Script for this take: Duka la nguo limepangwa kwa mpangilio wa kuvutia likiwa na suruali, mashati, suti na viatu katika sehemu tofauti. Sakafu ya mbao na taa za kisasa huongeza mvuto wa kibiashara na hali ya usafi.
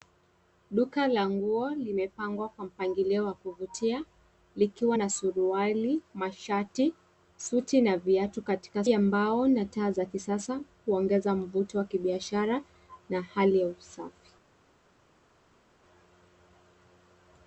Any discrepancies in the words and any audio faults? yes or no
yes